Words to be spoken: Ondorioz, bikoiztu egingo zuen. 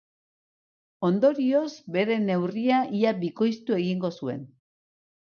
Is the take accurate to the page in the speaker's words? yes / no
no